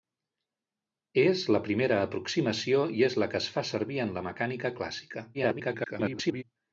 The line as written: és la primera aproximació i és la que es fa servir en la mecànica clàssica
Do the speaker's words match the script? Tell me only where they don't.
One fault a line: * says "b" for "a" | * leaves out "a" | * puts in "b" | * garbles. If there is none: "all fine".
* garbles